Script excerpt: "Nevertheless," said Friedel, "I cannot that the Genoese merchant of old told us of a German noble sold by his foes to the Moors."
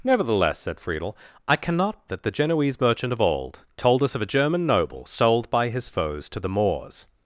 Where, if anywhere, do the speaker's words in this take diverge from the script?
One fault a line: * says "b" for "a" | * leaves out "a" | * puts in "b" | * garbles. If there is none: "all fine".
all fine